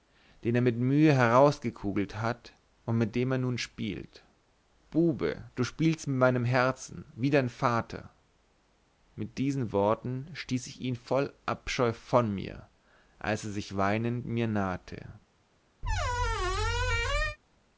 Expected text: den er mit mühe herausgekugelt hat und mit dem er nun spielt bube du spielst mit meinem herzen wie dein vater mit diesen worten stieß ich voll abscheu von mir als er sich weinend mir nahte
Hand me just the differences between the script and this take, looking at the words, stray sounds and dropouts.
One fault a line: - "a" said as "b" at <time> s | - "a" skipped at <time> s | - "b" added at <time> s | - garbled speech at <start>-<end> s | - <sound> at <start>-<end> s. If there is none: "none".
- "ihn" added at 10.8 s
- squeak at 15.8-17.4 s